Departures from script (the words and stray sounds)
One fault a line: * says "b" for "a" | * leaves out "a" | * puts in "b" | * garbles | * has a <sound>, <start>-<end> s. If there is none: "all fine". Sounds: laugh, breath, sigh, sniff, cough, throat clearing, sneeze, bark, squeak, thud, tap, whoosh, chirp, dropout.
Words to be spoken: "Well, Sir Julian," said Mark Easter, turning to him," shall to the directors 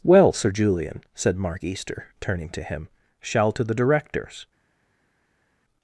all fine